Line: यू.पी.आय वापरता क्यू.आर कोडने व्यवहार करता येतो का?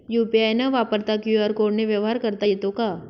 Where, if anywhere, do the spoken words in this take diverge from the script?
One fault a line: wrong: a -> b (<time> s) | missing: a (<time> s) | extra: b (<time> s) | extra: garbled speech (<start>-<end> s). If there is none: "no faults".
extra: न (0.5 s)